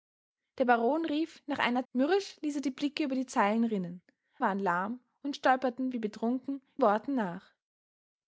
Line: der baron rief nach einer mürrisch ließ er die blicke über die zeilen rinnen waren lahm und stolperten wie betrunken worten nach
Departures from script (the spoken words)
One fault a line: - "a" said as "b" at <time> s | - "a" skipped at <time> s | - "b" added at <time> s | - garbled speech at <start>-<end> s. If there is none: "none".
none